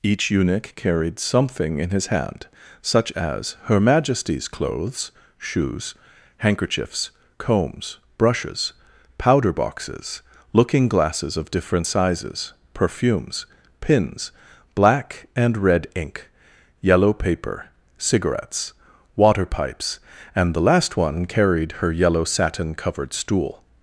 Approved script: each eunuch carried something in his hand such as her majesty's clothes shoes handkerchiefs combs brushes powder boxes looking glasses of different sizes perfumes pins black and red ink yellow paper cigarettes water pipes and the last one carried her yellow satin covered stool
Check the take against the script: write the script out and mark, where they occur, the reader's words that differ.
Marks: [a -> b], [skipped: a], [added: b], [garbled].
each eunuch carried something in his hand such as her majesty's clothes shoes handkerchiefs combs brushes powder boxes looking glasses of different sizes perfumes pins black and red ink yellow paper cigarettes water pipes and the last one carried her yellow satin covered stool